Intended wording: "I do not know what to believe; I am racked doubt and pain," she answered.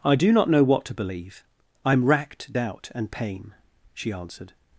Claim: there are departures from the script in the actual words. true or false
false